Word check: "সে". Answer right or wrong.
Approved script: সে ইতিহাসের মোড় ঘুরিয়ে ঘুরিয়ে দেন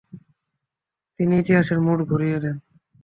wrong